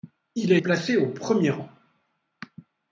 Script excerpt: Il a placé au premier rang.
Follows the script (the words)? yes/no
yes